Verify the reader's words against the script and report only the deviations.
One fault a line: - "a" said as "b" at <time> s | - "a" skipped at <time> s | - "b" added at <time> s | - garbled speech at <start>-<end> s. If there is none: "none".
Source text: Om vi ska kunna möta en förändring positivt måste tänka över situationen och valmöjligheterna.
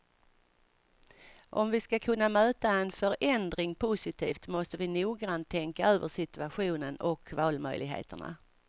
- "vi noggrant" added at 4.8 s